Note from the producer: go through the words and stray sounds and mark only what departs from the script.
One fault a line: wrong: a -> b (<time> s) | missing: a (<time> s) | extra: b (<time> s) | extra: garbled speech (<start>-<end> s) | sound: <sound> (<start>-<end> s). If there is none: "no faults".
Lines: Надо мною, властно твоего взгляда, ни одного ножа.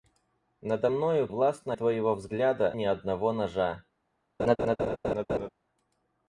sound: laugh (4.4-5.5 s)